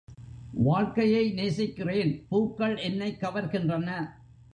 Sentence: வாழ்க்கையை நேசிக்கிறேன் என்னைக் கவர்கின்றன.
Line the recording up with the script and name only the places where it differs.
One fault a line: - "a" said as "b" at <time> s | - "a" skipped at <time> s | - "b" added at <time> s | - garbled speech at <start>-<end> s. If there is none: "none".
- "பூக்கள்" added at 2.3 s